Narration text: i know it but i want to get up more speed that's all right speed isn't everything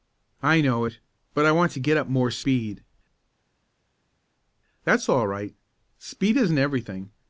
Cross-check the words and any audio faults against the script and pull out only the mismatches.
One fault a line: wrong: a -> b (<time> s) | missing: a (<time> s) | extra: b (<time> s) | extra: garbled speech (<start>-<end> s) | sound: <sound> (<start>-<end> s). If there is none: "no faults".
no faults